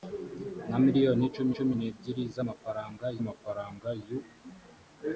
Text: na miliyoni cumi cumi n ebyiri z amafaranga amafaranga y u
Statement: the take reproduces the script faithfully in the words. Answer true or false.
true